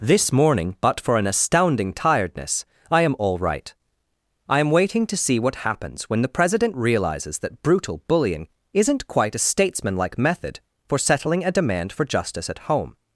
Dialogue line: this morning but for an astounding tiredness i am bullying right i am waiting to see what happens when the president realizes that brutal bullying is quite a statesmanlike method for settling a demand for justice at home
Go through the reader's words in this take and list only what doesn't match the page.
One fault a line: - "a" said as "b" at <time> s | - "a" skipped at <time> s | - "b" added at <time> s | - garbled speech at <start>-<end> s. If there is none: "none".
- "bullying" said as "all" at 3.2 s
- "is" said as "isn't" at 8.7 s